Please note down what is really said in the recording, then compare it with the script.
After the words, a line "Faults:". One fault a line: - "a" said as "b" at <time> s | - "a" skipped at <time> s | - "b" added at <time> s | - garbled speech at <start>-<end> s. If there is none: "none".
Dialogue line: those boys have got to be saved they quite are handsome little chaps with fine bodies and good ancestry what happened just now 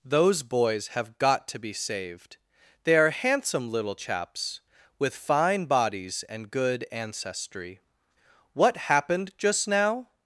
those boys have got to be saved they are handsome little chaps with fine bodies and good ancestry what happened just now
Faults:
- "quite" skipped at 3.0 s